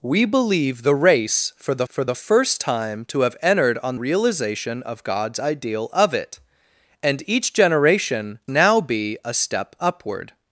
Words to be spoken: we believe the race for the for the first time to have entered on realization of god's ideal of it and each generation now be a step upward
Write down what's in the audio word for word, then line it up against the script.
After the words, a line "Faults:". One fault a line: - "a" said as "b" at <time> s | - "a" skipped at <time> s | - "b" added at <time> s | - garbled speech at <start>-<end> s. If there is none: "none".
we believe the race for the for the first time to have entered on realization of god's ideal of it and each generation now be a step upward
Faults:
none